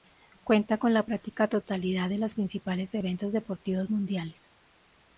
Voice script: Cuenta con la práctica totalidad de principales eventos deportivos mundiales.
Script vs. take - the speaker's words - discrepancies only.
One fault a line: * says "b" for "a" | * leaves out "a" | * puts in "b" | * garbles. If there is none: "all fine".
* puts in "los"